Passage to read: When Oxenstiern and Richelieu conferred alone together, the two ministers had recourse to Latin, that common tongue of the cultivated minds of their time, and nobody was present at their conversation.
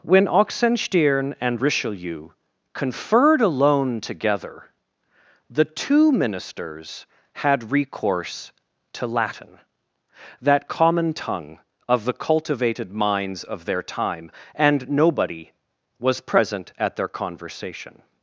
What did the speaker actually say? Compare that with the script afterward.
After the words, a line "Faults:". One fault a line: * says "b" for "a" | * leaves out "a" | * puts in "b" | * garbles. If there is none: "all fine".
When Oxenstiern and Richelieu conferred alone together, the two ministers had recourse to Latin, that common tongue of the cultivated minds of their time, and nobody was present at their conversation.
Faults:
all fine